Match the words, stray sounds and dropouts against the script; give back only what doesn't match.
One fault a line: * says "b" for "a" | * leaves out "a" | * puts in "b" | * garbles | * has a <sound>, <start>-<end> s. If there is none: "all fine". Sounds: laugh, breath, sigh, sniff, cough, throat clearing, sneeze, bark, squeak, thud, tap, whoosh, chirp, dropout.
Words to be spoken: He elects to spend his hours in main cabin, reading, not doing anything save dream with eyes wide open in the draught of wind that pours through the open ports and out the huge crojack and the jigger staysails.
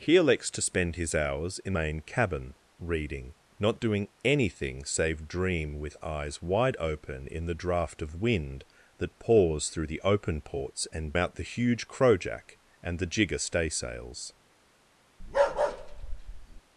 * has a bark, 15.2-16.6 s